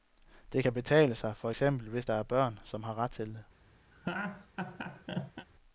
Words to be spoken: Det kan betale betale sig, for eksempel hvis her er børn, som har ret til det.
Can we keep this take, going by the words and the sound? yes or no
no